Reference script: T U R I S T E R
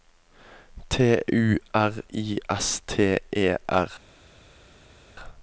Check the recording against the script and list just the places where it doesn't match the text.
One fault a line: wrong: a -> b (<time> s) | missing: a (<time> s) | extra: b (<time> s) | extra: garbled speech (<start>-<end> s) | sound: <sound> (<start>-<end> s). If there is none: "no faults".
no faults